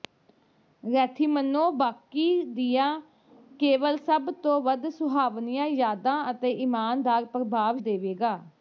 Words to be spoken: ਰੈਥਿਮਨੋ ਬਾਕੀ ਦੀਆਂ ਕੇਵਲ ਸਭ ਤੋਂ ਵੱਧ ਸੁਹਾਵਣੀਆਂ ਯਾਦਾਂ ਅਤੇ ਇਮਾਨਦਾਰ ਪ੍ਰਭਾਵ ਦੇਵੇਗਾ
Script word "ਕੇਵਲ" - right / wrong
right